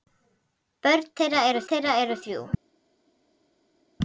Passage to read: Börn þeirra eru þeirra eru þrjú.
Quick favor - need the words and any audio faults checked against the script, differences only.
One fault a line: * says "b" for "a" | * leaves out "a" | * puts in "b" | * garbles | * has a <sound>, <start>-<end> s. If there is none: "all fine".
all fine